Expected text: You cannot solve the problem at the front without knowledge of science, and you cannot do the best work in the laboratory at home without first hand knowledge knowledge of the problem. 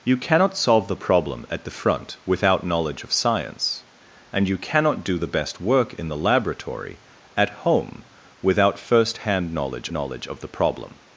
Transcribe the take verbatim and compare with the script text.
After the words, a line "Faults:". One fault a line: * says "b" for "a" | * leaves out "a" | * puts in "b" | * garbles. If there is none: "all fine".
You cannot solve the problem at the front without knowledge of science, and you cannot do the best work in the laboratory at home without first hand knowledge knowledge of the problem.
Faults:
all fine